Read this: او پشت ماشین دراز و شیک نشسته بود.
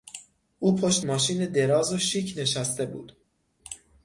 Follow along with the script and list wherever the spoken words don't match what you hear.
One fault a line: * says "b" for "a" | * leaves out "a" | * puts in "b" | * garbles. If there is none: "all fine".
all fine